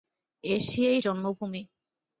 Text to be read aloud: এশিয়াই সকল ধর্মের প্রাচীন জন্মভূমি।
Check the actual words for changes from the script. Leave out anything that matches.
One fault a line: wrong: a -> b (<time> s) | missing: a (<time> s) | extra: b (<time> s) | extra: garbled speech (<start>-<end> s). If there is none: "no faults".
missing: সকল ধর্মের প্রাচীন (1.0 s)